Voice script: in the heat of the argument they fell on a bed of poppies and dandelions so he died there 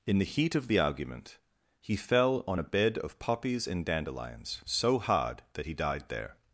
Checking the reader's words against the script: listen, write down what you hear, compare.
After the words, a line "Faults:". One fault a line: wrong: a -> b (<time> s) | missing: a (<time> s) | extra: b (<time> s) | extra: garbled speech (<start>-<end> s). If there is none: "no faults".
in the heat of the argument he fell on a bed of poppies and dandelions so hard that he died there
Faults:
wrong: they -> he (1.8 s)
extra: hard that (5.0 s)